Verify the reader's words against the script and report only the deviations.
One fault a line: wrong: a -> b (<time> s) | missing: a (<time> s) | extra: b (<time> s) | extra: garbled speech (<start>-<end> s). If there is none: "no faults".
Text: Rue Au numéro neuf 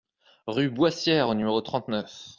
extra: Boissière (0.7 s)
extra: trente (1.6 s)